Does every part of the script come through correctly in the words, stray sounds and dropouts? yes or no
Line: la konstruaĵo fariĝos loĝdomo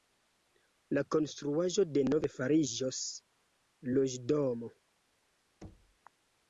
no